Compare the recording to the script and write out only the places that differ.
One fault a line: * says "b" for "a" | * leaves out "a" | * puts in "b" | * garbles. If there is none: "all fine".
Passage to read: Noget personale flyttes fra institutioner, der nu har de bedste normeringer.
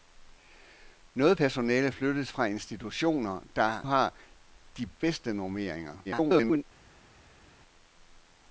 * leaves out "nu"
* garbles